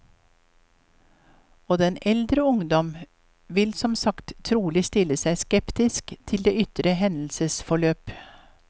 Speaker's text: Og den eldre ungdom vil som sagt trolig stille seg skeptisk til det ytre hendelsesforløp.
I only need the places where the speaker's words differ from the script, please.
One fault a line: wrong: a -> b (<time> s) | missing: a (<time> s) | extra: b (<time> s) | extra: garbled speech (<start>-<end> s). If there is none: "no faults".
no faults